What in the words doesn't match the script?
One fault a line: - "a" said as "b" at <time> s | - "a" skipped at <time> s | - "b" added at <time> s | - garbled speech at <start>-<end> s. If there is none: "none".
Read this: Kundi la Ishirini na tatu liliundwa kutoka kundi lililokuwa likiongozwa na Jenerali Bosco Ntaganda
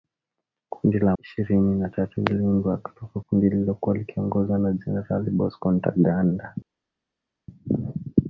none